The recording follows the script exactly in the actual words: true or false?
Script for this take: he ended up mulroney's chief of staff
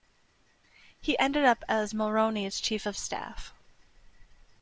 false